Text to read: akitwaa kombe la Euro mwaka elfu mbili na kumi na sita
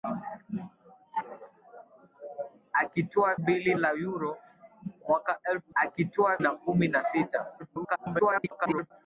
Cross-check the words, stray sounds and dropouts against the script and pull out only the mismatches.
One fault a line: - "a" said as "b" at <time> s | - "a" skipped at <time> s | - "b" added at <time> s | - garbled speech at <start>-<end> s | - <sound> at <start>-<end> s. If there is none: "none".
- "kombe" said as "mbili" at 3.4 s
- "mbili" said as "akitwaa" at 5.7 s
- garbled speech at 7.6-8.9 s